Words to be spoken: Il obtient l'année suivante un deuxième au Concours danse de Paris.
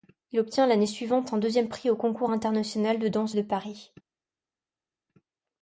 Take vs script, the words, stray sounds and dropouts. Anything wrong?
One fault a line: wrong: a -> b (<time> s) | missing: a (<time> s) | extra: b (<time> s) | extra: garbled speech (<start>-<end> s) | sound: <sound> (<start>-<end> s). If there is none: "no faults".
extra: prix (1.7 s)
extra: international de (2.3 s)